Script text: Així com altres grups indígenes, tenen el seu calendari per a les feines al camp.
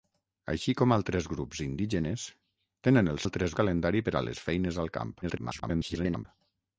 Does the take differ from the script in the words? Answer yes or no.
yes